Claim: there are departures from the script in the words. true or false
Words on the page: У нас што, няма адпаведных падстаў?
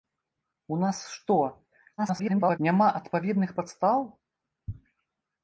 true